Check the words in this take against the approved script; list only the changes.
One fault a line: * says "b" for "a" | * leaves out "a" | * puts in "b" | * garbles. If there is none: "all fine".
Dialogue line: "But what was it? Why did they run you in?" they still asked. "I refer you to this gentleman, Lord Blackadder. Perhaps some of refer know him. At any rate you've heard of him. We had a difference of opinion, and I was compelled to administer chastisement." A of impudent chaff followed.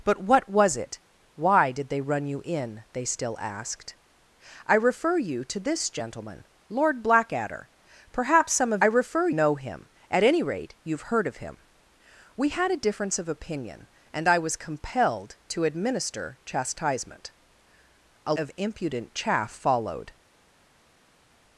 all fine